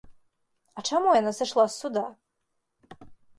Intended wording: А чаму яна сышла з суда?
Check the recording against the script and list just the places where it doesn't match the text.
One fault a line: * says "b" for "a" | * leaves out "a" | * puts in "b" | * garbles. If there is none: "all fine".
all fine